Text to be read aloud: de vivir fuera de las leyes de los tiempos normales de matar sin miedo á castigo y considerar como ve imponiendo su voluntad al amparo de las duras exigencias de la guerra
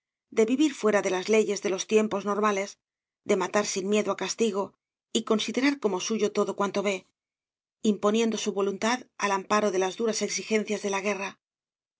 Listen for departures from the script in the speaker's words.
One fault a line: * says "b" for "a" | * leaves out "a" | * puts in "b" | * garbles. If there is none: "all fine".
* puts in "suyo todo cuanto"